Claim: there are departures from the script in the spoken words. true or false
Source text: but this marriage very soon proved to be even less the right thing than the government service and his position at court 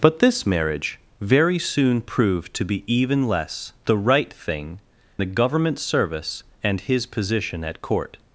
true